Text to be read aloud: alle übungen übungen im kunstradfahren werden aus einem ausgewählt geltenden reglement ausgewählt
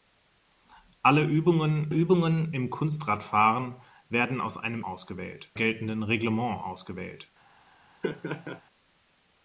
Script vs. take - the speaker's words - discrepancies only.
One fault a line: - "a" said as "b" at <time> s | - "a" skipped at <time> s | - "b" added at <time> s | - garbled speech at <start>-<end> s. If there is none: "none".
none